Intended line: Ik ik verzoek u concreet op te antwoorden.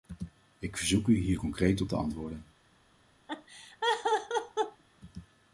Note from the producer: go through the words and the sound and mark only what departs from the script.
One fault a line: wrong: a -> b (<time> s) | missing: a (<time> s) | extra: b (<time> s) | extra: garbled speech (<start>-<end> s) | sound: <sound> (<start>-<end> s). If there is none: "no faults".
missing: ik (0.8 s)
extra: hier (1.2 s)
sound: laugh (3.3-4.8 s)